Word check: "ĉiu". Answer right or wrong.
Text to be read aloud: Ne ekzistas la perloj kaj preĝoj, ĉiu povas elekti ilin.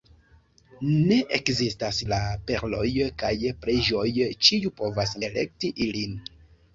right